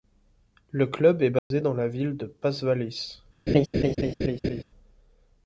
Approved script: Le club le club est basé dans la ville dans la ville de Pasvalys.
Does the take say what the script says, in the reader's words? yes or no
no